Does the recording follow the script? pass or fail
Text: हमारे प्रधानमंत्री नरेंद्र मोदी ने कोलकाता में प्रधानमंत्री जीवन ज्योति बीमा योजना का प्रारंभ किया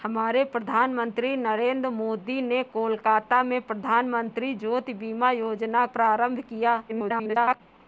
fail